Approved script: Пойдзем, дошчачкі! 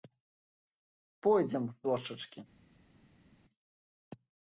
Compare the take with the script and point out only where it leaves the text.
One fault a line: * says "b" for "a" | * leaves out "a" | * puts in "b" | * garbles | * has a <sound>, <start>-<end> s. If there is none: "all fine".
all fine